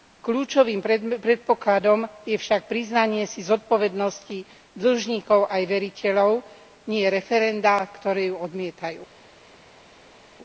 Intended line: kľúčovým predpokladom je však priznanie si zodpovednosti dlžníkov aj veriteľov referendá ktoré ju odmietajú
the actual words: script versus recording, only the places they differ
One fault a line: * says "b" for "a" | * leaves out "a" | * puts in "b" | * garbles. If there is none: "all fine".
* puts in "nie"